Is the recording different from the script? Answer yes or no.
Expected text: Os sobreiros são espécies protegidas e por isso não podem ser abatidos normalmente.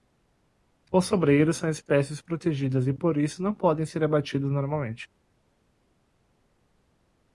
no